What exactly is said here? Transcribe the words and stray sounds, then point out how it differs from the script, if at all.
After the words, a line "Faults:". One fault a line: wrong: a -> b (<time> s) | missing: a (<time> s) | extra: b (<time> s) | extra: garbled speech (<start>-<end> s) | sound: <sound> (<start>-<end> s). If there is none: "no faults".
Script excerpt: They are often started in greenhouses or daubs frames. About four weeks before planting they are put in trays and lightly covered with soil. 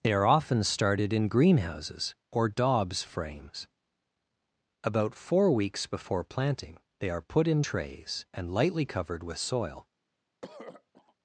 They are often started in greenhouses or daubs frames. About four weeks before planting they are put in trays and lightly covered with soil.
Faults:
sound: throat clearing (10.4-11.1 s)